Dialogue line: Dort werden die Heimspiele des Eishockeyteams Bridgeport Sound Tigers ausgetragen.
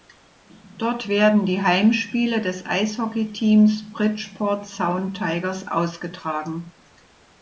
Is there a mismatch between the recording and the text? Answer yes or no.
no